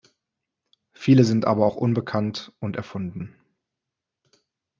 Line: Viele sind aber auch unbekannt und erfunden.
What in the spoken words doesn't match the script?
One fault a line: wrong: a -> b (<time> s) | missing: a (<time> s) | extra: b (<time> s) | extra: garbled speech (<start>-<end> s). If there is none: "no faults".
no faults